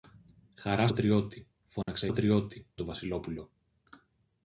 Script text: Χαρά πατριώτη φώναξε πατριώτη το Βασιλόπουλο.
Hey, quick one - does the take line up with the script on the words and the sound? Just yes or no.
no